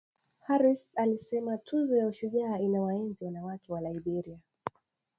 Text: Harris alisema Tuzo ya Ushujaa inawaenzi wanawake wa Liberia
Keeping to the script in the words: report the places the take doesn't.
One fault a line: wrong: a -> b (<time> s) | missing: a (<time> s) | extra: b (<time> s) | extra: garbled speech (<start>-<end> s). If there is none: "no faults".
no faults